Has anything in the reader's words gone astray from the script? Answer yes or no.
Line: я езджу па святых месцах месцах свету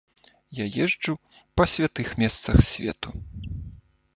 yes